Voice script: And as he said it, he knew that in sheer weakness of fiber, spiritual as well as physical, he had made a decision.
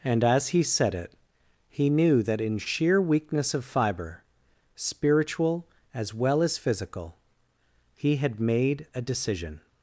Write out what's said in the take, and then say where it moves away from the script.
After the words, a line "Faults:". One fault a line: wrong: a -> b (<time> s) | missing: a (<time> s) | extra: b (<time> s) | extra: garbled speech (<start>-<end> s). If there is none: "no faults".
And as he said it, he knew that in sheer weakness of fiber, spiritual as well as physical, he had made a decision.
Faults:
no faults